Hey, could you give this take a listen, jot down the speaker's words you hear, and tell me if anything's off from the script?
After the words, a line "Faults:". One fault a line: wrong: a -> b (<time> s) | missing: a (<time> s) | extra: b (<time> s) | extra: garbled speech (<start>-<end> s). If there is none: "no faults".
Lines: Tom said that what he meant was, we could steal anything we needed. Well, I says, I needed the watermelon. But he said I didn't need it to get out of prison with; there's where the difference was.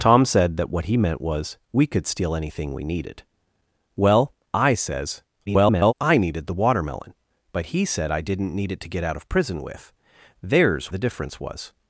Tom said that what he meant was, we could steal anything we needed. Well, I says, [garbled] I needed the watermelon. But he said I didn't need it to get out of prison with; there's the difference was.
Faults:
extra: garbled speech (5.5-5.9 s)
missing: where (10.9 s)